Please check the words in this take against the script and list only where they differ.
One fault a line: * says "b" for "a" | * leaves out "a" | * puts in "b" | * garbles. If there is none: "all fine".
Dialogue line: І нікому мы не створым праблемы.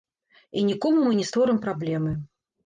all fine